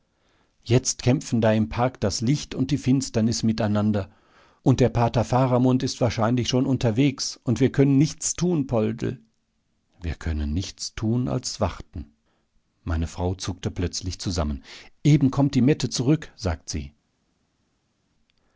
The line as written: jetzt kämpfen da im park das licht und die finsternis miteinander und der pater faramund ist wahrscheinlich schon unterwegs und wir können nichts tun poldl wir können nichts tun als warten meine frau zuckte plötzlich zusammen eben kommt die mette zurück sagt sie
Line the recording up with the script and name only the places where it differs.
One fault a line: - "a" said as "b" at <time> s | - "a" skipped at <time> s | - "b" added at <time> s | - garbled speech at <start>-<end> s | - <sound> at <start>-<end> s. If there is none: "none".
none